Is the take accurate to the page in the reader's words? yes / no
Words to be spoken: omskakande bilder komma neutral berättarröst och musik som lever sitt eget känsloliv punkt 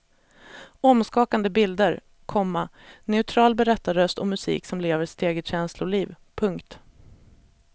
yes